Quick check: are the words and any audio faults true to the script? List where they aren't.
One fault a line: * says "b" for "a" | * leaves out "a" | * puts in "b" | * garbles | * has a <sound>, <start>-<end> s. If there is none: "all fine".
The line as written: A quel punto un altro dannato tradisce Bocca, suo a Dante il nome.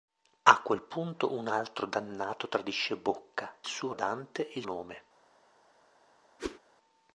* has a whoosh, 6.4-6.6 s